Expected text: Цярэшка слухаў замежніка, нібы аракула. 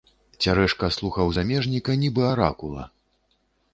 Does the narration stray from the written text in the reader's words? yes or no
no